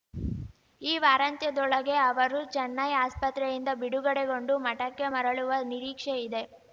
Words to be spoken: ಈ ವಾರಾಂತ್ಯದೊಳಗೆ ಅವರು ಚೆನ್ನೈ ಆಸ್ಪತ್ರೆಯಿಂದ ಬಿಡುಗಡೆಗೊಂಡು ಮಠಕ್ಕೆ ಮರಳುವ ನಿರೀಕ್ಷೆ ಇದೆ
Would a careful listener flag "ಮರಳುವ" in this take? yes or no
no